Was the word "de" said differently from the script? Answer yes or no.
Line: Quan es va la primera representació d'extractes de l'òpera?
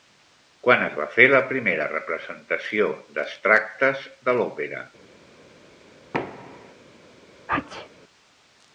no